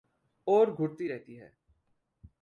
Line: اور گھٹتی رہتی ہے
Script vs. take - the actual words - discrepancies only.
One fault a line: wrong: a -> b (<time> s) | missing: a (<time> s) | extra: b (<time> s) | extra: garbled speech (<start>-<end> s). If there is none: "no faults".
no faults